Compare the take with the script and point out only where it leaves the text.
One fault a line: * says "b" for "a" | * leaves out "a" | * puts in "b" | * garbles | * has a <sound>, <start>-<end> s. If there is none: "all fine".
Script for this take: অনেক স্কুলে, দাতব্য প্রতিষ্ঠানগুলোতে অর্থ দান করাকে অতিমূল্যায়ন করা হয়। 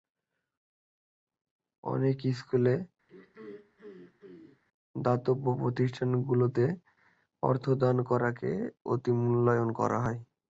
* has a throat clearing, 3.1-4.6 s